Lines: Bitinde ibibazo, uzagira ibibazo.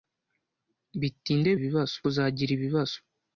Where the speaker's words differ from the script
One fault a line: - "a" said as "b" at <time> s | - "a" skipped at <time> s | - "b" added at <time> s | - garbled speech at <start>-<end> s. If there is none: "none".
none